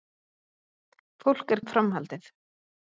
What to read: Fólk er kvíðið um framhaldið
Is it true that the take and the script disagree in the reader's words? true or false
true